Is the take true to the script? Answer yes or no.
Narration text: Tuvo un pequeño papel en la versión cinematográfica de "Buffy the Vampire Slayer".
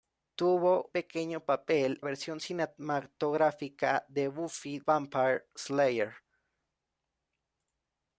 no